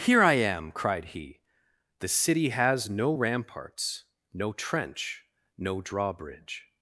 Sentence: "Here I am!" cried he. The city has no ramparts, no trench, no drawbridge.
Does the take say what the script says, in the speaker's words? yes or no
yes